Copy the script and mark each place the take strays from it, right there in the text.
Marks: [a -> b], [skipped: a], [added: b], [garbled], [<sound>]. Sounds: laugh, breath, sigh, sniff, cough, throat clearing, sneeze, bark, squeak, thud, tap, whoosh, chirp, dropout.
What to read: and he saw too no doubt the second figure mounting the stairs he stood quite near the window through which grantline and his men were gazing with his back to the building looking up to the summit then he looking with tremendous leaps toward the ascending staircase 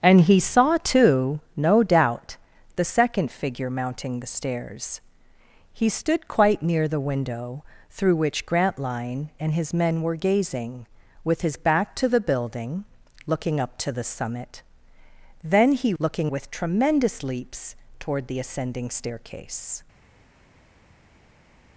and he saw too no doubt the second figure mounting the stairs he stood quite near the window through which grantline and his men were gazing with his back to the building looking up to the summit then he looking with tremendous leaps toward the ascending staircase